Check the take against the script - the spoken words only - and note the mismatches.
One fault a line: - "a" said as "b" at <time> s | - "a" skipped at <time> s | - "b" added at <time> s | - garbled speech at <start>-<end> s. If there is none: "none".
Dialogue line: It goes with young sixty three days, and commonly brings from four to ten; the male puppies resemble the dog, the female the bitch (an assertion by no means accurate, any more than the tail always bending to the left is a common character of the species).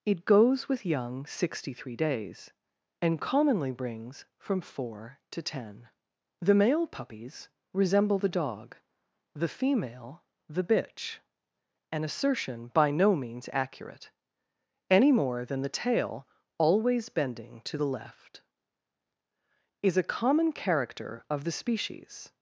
none